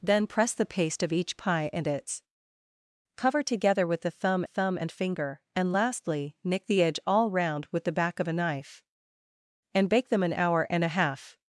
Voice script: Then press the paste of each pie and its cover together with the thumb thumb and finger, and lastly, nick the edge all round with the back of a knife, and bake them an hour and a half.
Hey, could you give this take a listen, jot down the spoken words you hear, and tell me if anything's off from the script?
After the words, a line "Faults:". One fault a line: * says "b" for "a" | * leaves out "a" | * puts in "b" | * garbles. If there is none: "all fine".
Then press the paste of each pie and its cover together with the thumb thumb and finger, and lastly, nick the edge all round with the back of a knife, and bake them an hour and a half.
Faults:
all fine